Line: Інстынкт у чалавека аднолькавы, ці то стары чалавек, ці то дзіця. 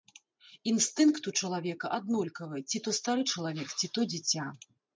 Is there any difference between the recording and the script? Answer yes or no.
no